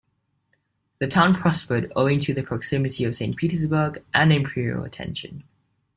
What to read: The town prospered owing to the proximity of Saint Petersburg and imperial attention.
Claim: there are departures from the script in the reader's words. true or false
false